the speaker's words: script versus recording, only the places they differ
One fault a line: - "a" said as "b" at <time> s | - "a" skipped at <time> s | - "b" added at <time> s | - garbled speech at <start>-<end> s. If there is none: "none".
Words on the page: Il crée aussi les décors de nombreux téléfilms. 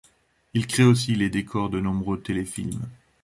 none